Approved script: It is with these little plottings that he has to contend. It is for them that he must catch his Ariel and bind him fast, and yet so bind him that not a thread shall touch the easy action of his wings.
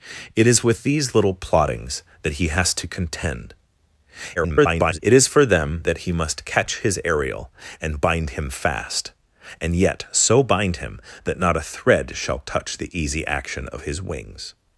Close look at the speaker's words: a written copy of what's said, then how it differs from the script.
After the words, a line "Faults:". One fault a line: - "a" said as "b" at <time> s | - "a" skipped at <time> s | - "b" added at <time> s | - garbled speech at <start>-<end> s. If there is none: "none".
It is with these little plottings that he has to contend. [garbled] It is for them that he must catch his Ariel and bind him fast, and yet so bind him that not a thread shall touch the easy action of his wings.
Faults:
- garbled speech at 4.4-5.0 s